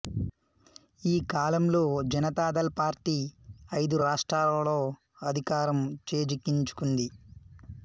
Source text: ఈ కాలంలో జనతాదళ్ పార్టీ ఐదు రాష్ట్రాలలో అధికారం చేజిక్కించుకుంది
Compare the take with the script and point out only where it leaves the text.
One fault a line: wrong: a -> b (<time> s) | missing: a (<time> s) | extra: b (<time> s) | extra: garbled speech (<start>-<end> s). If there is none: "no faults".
no faults